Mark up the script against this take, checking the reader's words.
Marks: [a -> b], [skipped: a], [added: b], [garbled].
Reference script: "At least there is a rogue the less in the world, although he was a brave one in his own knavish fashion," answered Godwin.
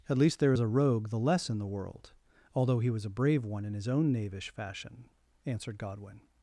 "At least there is a rogue the less in the world, although he was a brave one in his own knavish fashion," answered Godwin.